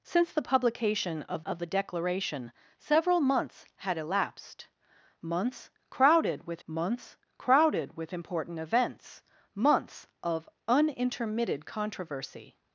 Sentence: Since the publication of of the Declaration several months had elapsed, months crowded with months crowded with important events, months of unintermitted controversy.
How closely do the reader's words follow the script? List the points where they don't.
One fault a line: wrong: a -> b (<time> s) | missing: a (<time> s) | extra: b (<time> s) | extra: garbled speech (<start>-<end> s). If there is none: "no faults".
no faults